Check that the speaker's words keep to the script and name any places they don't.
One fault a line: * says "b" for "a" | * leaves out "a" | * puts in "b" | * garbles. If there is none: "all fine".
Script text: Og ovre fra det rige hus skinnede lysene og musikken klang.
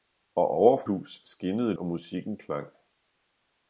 * leaves out "fra det rige"
* leaves out "lysene"